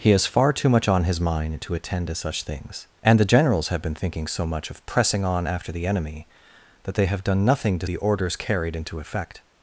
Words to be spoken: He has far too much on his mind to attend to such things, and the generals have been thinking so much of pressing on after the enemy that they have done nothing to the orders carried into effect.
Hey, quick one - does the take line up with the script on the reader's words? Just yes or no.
yes